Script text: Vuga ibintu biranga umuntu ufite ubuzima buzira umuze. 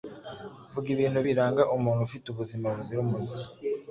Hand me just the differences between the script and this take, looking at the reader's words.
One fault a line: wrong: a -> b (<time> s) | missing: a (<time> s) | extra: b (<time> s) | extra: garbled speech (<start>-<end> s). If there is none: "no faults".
no faults